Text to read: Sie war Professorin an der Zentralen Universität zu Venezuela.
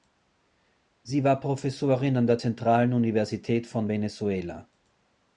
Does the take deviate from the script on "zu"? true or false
true